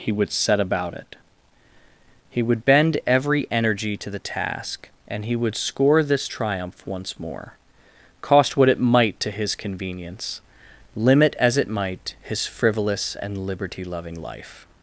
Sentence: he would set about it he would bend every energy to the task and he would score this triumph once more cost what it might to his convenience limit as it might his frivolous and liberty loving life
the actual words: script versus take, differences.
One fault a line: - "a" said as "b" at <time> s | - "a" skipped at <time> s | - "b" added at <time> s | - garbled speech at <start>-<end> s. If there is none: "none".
none